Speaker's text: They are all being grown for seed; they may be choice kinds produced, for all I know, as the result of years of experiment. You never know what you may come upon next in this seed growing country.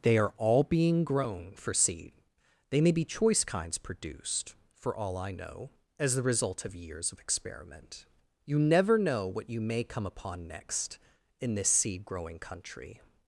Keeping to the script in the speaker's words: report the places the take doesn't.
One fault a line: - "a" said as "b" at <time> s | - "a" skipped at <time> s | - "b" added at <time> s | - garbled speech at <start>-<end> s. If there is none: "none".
none